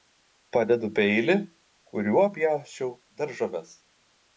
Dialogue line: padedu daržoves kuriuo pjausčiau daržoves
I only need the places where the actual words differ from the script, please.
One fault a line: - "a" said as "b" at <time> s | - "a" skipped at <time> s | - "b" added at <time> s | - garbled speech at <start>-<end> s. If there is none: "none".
- "daržoves" said as "peilį" at 1.0 s